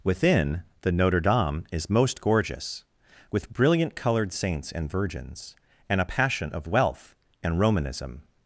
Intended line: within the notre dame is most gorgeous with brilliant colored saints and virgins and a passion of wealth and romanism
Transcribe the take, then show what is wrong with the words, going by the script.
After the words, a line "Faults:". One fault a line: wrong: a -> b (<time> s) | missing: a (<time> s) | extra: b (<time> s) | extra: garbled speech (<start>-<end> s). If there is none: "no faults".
within the notre dame is most gorgeous with brilliant colored saints and virgins and a passion of wealth and romanism
Faults:
no faults